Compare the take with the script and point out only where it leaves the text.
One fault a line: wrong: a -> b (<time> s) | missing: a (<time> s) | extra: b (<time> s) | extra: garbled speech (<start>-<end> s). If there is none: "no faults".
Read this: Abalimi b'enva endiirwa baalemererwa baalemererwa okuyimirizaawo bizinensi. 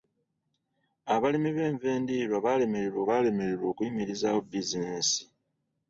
no faults